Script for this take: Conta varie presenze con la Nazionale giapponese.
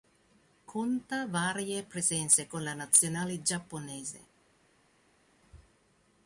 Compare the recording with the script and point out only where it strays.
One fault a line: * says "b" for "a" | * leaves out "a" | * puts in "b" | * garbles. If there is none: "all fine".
all fine